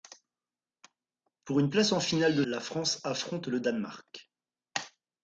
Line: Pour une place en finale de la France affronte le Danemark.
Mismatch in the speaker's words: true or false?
false